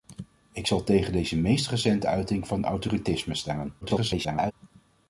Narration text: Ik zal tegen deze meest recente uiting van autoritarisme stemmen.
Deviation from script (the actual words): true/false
true